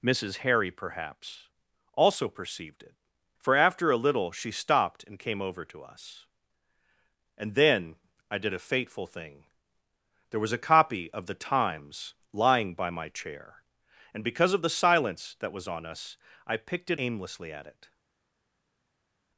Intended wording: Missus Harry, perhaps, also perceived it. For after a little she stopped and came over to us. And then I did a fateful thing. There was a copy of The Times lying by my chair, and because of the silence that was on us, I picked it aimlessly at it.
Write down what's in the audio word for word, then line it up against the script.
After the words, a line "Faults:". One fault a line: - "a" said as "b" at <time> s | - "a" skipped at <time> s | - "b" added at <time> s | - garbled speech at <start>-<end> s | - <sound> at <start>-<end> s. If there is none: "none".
Missus Harry, perhaps, also perceived it. For after a little she stopped and came over to us. And then I did a fateful thing. There was a copy of The Times lying by my chair, and because of the silence that was on us, I picked it aimlessly at it.
Faults:
none